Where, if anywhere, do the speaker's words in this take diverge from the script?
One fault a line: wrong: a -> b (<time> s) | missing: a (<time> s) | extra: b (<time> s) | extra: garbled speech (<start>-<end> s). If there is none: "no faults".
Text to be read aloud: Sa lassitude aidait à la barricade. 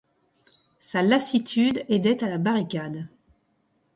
no faults